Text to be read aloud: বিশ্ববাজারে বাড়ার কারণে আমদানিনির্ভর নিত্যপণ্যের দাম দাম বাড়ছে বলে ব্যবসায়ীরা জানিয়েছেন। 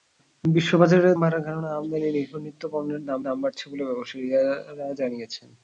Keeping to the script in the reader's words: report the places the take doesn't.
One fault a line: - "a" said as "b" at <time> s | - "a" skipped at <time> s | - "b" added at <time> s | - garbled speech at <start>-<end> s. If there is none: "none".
none